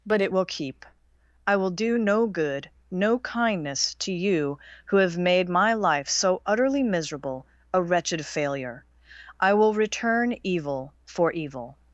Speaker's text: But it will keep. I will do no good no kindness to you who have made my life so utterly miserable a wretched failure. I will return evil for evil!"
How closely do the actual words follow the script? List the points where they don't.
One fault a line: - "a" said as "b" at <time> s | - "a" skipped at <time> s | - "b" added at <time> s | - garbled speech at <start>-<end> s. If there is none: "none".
none